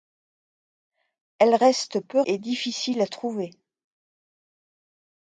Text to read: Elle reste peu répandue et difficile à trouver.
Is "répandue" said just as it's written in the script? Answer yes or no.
no